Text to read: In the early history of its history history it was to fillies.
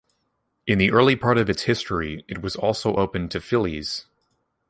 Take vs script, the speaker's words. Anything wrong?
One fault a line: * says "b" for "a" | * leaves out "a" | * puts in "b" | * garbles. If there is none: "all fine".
* says "part" for "history"
* leaves out "history"
* puts in "also open"